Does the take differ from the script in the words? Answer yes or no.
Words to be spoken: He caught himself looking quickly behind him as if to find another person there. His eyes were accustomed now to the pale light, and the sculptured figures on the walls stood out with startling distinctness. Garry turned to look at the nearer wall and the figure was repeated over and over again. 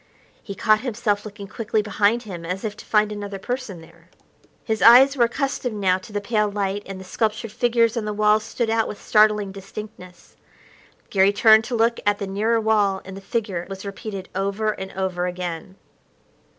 no